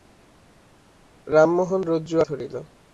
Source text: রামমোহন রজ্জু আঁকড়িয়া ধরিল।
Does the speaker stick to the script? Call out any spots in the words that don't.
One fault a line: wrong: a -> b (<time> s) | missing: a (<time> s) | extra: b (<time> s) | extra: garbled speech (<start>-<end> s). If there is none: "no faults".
missing: আঁকড়িয়া (2.2 s)